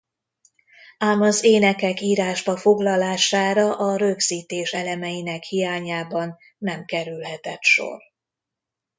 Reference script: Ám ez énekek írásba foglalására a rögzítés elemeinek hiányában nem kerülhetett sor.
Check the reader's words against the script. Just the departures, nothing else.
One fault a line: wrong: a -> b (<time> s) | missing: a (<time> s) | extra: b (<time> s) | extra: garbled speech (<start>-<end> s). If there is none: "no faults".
wrong: ez -> az (1.2 s)